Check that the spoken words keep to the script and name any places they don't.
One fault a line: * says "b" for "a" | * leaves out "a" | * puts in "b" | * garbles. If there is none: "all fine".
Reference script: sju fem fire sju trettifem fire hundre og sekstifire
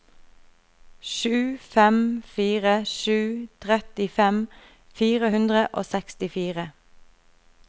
all fine